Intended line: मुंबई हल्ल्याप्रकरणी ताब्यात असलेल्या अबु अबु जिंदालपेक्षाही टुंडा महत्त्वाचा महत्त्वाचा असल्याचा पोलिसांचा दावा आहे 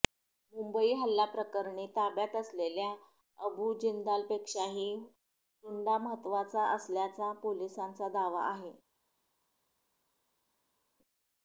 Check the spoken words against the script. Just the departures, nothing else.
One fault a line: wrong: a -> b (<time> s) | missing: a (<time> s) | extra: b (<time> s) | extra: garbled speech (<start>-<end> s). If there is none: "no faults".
missing: अबु (3.7 s)
missing: महत्त्वाचा (6.7 s)